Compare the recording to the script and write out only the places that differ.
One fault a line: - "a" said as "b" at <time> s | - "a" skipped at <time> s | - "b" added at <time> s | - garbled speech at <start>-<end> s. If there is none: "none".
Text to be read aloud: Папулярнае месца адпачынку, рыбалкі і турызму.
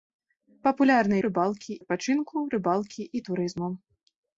- "месца" said as "рыбалкі" at 1.3 s